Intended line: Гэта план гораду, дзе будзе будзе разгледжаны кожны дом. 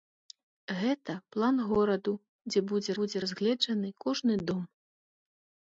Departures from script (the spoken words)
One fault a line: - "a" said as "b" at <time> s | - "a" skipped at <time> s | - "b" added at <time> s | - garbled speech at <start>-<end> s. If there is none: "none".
none